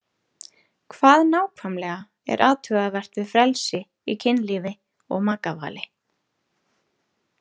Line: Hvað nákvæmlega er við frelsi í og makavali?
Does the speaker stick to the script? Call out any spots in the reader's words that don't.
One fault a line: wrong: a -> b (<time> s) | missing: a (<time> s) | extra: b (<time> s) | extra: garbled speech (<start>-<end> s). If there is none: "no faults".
extra: athugavert (2.5 s)
extra: kynlífi (4.3 s)